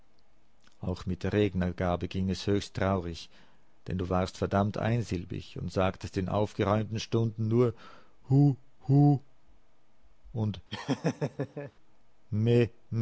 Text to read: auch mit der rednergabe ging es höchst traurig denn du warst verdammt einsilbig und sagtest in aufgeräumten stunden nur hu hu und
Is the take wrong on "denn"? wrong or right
right